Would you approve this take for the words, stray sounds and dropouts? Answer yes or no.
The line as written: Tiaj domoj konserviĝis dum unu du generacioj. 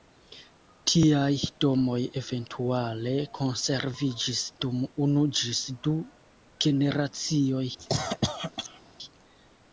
no